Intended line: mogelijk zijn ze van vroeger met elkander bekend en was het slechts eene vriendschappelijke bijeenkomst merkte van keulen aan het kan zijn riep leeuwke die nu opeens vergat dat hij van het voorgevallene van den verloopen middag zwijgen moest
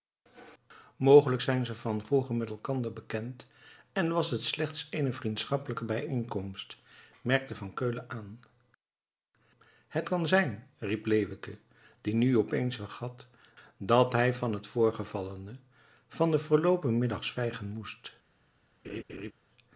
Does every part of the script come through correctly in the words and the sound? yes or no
no